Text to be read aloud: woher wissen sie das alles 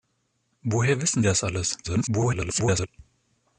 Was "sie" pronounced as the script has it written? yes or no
no